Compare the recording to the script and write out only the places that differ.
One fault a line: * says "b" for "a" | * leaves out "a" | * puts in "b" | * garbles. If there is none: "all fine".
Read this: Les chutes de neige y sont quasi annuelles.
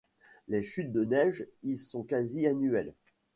all fine